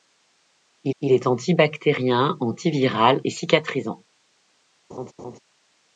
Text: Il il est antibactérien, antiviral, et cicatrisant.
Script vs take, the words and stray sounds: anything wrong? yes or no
yes